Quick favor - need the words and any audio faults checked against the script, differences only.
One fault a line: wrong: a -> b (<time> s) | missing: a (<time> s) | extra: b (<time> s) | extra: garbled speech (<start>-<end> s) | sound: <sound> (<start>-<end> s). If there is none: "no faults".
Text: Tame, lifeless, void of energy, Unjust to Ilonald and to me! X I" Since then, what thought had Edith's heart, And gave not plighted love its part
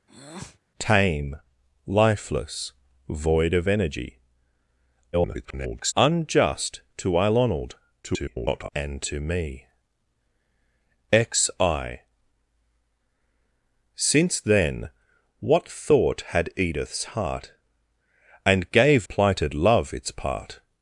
sound: breath (0.1-0.6 s)
extra: garbled speech (5.1-5.9 s)
extra: garbled speech (8.0-8.7 s)
missing: not (19.1 s)